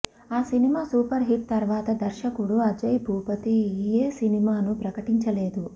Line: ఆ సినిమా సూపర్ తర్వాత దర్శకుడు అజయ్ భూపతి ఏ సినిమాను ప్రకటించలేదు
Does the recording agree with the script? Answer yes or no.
no